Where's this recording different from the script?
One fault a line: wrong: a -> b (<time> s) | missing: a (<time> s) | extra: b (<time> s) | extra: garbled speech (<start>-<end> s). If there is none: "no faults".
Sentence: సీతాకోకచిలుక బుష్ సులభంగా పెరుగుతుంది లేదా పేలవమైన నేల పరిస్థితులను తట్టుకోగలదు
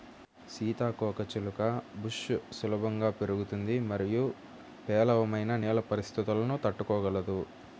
wrong: లేదా -> మరియు (3.9 s)